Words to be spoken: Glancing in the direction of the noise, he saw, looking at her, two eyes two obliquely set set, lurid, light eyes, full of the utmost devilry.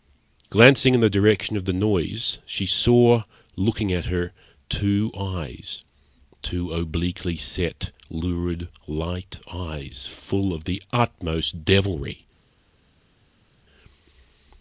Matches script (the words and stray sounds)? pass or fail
fail